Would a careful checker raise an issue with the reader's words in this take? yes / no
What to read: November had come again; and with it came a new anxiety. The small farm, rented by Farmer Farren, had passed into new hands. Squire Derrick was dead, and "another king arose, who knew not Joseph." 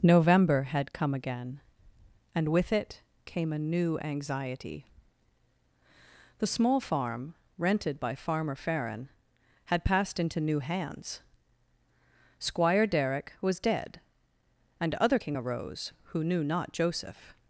yes